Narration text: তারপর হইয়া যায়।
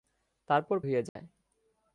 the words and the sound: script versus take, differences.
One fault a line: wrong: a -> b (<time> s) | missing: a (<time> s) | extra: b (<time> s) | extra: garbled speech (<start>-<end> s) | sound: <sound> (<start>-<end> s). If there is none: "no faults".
sound: dropout (1.1-1.2 s)